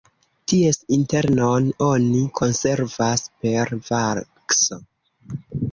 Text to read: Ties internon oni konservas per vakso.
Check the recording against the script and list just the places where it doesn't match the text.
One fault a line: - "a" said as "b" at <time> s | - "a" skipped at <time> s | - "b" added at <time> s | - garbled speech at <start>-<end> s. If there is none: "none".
none